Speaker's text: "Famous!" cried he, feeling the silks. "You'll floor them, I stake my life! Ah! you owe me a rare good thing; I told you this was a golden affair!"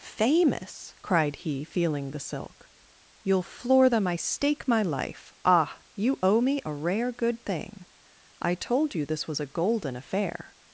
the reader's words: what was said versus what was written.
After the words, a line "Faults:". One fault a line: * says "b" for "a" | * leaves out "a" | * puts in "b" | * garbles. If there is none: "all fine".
"Famous!" cried he, feeling the silk. "You'll floor them, I stake my life! Ah! you owe me a rare good thing; I told you this was a golden affair!"
Faults:
* says "silk" for "silks"